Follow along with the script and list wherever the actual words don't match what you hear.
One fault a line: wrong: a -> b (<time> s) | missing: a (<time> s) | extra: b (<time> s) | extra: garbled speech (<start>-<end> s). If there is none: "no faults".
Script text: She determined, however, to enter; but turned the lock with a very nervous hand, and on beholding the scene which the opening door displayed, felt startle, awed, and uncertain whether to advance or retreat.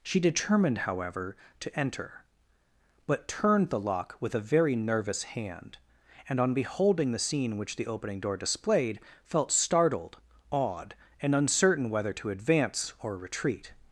wrong: startle -> startled (9.5 s)